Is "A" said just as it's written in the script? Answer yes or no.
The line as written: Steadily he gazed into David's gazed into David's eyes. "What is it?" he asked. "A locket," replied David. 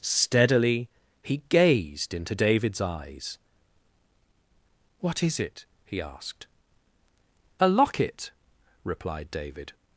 yes